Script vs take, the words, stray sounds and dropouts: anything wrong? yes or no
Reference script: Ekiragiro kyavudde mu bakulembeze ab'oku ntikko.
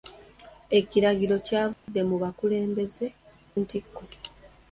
yes